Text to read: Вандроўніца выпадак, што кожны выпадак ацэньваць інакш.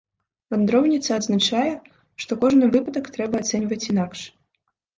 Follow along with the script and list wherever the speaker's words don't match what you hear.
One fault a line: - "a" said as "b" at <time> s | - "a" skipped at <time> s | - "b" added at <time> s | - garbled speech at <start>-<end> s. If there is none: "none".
- "выпадак" said as "адзначае" at 1.2 s
- "трэба" added at 3.2 s